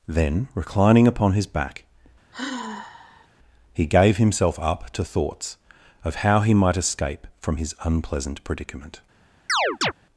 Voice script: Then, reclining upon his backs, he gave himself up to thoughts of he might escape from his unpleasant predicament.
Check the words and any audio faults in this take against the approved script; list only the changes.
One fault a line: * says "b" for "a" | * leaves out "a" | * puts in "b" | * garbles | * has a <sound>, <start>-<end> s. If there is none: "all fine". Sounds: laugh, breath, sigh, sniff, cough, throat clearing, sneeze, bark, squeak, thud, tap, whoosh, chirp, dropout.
* says "back" for "backs"
* has a sigh, 2.3-3.3 s
* puts in "how"
* has a chirp, 9.5-9.9 s